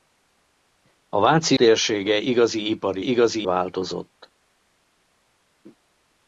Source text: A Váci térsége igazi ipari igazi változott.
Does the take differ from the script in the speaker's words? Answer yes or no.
no